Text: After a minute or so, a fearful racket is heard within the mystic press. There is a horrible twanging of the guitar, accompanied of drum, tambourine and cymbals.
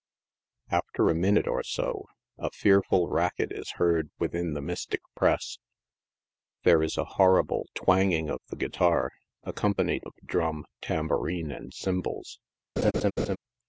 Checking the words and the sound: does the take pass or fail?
fail